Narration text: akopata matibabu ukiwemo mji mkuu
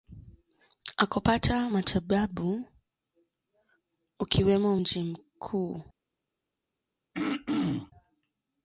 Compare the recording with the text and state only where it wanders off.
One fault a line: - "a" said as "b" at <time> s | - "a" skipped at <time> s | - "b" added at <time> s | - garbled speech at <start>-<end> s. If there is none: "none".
none